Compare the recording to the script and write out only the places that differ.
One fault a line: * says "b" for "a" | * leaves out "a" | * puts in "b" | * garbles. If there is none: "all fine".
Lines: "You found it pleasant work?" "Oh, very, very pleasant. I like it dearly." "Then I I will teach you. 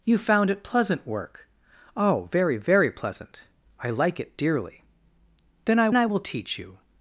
all fine